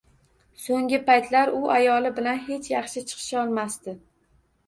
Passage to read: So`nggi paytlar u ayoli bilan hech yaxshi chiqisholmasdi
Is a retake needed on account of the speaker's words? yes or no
no